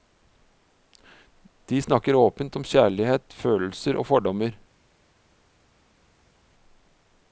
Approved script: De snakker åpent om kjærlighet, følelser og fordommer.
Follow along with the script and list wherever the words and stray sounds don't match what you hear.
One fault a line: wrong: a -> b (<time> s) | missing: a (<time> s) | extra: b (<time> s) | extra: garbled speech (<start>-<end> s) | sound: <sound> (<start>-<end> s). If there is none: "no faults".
no faults